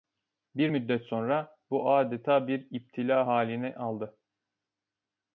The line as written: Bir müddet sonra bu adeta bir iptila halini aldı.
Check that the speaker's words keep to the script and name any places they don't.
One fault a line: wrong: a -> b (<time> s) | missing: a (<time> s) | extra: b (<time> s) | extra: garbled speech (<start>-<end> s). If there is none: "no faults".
no faults